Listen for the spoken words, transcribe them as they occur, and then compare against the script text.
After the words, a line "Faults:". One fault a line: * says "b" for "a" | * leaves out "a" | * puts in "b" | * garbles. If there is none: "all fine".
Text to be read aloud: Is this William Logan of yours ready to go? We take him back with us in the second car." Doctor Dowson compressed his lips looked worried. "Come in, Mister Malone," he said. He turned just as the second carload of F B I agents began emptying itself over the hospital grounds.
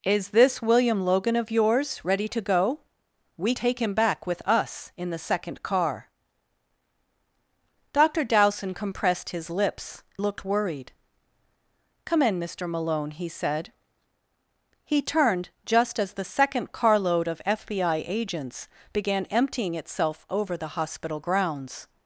Is this William Logan of yours ready to go? We take him back with us in the second car." Doctor Dowson compressed his lips looked worried. "Come in, Mister Malone," he said. He turned just as the second carload of F B I agents began emptying itself over the hospital grounds.
Faults:
all fine